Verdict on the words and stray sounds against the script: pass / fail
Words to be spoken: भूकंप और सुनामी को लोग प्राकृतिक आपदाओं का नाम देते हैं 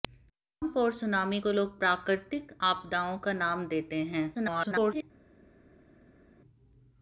fail